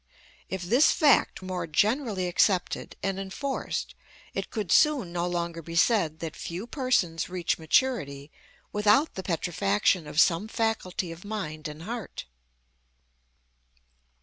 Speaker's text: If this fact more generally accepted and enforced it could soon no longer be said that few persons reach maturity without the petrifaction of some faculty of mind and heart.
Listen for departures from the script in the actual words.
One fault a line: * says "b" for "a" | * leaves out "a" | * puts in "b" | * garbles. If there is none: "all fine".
all fine